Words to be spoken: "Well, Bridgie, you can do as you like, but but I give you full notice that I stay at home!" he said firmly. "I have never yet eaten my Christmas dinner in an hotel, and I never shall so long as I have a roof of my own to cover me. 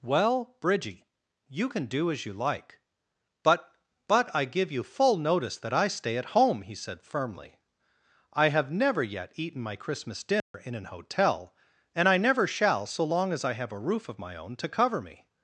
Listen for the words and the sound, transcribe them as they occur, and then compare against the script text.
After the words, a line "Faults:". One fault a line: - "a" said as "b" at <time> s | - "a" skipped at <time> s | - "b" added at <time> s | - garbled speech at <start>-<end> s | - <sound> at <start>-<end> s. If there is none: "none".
"Well, Bridgie, you can do as you like, but but I give you full notice that I stay at home!" he said firmly. "I have never yet eaten my Christmas dinner in an hotel, and I never shall so long as I have a roof of my own to cover me.
Faults:
- dropout at 10.4-10.5 s